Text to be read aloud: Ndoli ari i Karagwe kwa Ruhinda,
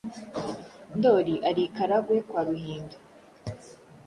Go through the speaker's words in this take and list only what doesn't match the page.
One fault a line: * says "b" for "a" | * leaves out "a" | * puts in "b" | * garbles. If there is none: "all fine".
all fine